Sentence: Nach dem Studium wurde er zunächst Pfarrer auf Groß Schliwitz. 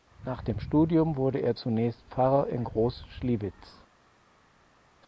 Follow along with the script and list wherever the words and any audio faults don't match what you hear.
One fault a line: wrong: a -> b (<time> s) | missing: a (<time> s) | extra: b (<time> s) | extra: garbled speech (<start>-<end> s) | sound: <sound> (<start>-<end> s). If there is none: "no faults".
wrong: auf -> in (2.5 s)